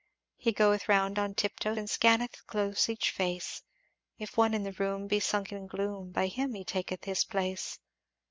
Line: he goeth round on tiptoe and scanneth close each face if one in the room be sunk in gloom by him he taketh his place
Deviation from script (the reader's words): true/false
false